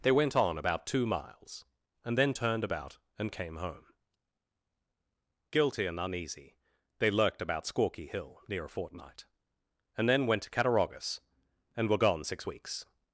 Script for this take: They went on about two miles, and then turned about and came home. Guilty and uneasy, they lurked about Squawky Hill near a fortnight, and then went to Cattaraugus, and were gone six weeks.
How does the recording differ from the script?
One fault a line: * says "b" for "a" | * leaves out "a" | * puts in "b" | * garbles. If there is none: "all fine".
all fine